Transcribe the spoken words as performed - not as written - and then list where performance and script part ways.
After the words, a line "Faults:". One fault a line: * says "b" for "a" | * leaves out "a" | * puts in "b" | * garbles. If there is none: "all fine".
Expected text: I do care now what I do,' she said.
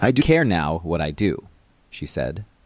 I do care now what I do,' she said.
Faults:
all fine